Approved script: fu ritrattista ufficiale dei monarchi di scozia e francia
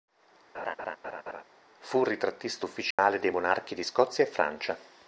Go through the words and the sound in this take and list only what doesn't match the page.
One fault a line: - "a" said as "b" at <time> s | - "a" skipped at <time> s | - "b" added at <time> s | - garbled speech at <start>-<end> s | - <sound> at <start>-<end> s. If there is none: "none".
- laugh at 0.5-1.4 s
- dropout at 2.9-3.0 s